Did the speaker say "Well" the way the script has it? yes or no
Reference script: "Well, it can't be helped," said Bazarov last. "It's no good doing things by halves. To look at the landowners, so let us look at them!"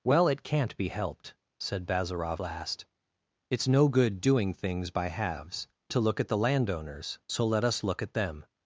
yes